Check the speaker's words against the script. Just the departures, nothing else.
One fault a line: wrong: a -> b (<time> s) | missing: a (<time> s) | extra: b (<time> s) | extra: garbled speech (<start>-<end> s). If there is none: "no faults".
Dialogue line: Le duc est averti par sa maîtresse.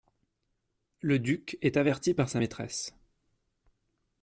no faults